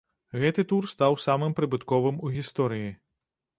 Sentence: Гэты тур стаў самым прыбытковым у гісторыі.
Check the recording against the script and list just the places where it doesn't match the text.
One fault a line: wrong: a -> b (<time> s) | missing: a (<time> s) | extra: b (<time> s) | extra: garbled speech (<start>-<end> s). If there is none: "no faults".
no faults